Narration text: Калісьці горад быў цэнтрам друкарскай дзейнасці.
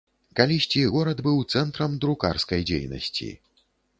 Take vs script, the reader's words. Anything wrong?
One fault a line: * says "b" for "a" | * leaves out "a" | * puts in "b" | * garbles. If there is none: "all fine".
all fine